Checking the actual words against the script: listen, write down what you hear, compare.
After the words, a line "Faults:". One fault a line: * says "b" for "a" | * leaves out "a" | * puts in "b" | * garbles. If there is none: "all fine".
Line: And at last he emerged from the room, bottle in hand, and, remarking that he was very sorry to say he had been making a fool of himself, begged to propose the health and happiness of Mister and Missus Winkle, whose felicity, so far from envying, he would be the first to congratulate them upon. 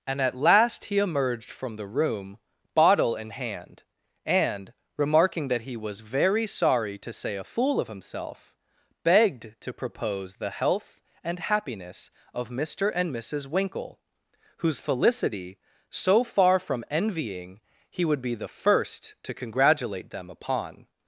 And at last he emerged from the room, bottle in hand, and, remarking that he was very sorry to say a fool of himself, begged to propose the health and happiness of Mister and Missus Winkle, whose felicity, so far from envying, he would be the first to congratulate them upon.
Faults:
* leaves out "he had been making"